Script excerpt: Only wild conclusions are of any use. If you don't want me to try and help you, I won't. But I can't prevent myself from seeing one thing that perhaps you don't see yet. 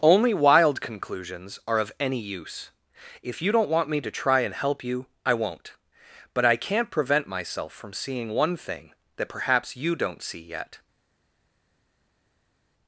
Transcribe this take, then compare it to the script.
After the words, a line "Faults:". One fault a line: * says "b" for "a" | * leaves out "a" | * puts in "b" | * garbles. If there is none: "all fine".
Only wild conclusions are of any use. If you don't want me to try and help you, I won't. But I can't prevent myself from seeing one thing that perhaps you don't see yet.
Faults:
all fine